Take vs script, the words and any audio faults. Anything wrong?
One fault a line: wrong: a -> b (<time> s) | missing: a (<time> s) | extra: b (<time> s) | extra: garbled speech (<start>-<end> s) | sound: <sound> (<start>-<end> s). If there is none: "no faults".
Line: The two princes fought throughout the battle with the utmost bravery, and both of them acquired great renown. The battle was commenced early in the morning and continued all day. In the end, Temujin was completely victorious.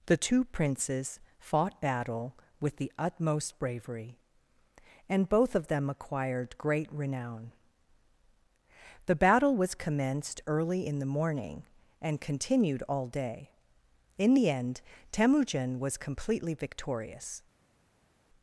missing: throughout the (1.8 s)